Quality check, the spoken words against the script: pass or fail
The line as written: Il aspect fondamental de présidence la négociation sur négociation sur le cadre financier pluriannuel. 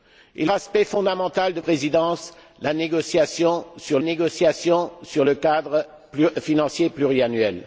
pass